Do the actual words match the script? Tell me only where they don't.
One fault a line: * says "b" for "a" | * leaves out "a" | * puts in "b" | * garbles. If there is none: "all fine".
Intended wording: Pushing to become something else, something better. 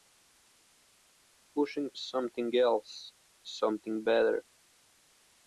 * leaves out "to become"